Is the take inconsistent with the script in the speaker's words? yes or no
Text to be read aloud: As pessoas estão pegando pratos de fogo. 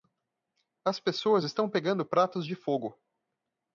no